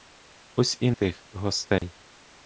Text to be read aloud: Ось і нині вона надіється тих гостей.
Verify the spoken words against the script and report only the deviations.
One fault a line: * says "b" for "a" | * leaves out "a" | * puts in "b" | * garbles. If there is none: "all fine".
* leaves out "нині вона надіється"